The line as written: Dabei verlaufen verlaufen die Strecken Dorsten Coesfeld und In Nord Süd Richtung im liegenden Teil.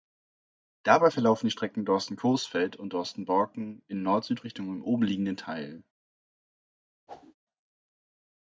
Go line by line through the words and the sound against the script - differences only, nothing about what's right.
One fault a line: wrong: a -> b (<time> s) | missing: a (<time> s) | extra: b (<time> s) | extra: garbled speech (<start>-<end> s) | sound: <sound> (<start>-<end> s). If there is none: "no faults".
missing: verlaufen (1.4 s)
extra: Dorsten Borken (2.9 s)
extra: oben (4.8 s)
sound: whoosh (7.1-7.4 s)